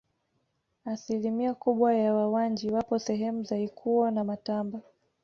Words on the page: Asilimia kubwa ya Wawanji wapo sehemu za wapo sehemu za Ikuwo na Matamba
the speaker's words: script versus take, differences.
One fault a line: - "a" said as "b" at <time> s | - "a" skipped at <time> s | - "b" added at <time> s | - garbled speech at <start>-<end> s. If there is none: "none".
- "wapo sehemu za" skipped at 3.6 s